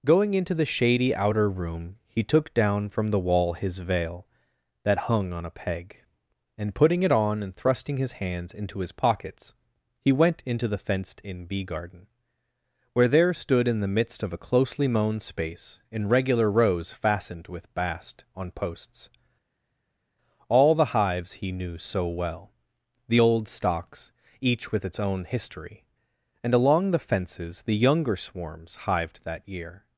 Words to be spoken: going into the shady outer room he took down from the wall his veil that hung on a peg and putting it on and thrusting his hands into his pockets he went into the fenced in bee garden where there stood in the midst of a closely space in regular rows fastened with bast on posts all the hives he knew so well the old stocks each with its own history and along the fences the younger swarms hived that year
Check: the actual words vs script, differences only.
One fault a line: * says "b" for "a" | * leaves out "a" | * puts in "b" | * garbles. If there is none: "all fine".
* puts in "mown"